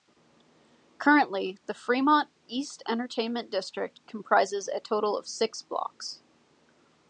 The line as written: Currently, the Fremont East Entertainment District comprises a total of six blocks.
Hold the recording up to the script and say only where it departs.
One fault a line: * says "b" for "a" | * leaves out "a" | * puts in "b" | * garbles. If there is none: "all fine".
all fine